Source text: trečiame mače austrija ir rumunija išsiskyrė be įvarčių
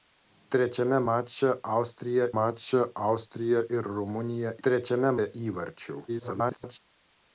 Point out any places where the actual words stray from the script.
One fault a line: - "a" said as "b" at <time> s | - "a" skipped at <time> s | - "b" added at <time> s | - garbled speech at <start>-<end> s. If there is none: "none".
- "mače austrija" added at 2.4 s
- "išsiskyrė" said as "trečiame" at 4.6 s
- garbled speech at 6.1-6.8 s